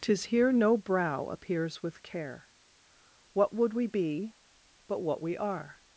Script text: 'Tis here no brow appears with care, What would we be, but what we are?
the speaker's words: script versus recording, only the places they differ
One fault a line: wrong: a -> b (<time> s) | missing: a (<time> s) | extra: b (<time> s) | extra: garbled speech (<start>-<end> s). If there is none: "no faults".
no faults